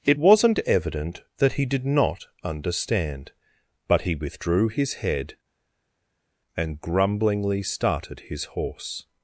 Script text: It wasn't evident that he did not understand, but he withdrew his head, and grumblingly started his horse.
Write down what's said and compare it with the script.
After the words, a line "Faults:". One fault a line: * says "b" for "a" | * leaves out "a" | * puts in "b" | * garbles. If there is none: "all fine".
It wasn't evident that he did not understand, but he withdrew his head, and grumblingly started his horse.
Faults:
all fine